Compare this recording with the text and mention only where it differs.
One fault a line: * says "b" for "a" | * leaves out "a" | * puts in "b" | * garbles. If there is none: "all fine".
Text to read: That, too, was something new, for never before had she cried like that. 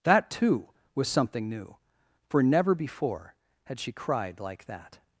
all fine